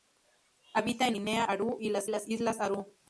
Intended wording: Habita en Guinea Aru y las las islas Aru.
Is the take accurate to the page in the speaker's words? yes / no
yes